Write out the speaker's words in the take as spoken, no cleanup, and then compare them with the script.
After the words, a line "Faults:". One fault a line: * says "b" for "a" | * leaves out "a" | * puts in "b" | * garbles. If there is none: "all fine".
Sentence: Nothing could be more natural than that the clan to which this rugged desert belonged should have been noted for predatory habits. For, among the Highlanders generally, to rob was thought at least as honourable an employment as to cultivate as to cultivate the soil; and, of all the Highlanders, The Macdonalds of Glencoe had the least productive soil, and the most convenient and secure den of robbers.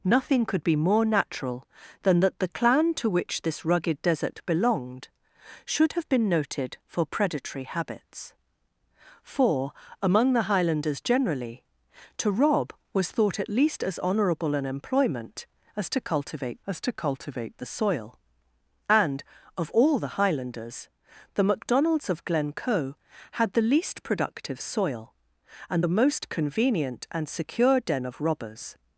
Nothing could be more natural than that the clan to which this rugged desert belonged should have been noted for predatory habits. For, among the Highlanders generally, to rob was thought at least as honourable an employment as to cultivate as to cultivate the soil; and, of all the Highlanders, The Macdonalds of Glencoe had the least productive soil, and the most convenient and secure den of robbers.
Faults:
all fine